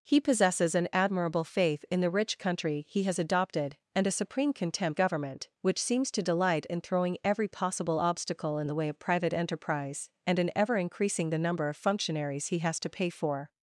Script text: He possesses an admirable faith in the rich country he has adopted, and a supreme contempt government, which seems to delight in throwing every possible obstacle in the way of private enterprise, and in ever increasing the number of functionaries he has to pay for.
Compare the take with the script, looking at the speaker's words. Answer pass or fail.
pass